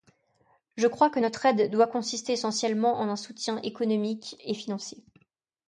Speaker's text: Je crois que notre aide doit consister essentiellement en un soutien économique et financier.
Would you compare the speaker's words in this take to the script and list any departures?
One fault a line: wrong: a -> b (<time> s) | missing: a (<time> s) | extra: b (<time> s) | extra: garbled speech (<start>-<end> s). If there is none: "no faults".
no faults